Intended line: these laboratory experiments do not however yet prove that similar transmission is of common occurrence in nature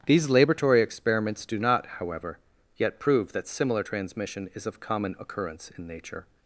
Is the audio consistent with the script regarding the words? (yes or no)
yes